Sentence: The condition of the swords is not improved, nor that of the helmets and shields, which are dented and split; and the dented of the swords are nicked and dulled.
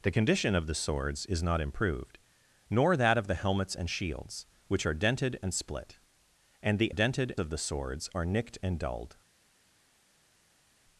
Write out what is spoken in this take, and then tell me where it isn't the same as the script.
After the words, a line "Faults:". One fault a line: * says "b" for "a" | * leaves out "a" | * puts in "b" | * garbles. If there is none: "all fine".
The condition of the swords is not improved, nor that of the helmets and shields, which are dented and split; and the dented of the swords are nicked and dulled.
Faults:
all fine